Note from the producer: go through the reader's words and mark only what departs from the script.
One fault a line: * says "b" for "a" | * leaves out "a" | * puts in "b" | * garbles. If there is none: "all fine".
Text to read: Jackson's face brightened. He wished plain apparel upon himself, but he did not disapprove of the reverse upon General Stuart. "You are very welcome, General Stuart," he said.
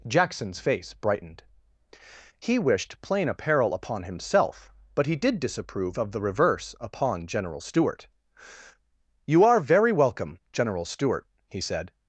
* leaves out "not"